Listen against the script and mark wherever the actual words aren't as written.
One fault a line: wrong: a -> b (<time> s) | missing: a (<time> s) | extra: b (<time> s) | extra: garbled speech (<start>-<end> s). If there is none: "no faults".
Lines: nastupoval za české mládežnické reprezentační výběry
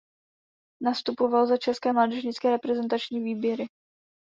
no faults